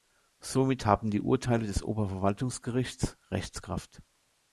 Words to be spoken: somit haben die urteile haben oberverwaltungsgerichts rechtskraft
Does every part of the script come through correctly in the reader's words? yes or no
no